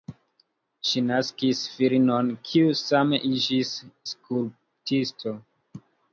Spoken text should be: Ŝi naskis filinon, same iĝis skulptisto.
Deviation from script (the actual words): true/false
true